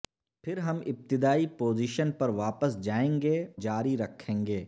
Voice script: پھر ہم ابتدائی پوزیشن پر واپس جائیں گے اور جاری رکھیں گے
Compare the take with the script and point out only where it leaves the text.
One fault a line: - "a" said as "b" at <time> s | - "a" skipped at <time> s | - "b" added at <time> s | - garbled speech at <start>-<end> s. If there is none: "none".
- "اور" skipped at 3.4 s